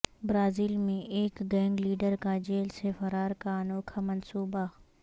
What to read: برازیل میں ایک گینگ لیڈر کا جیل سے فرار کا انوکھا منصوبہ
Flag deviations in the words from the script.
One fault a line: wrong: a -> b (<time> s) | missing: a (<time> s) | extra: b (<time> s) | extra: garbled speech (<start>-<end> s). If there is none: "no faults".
no faults